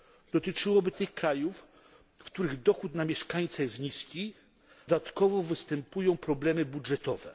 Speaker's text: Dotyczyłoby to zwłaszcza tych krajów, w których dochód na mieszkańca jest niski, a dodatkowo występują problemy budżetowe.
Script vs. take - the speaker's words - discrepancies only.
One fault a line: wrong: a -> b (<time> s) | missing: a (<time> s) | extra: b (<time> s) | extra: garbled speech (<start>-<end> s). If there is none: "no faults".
missing: to zwłaszcza (0.9 s)
missing: a (4.3 s)